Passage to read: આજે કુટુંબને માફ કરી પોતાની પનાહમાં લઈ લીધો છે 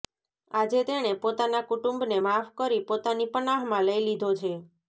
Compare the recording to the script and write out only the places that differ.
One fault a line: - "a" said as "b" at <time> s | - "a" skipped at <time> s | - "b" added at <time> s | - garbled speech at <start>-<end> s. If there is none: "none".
- "તેણે પોતાના" added at 0.9 s